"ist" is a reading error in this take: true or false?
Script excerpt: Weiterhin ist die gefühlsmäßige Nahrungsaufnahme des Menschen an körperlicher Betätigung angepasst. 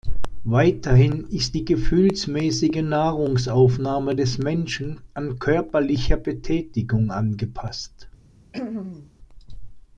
false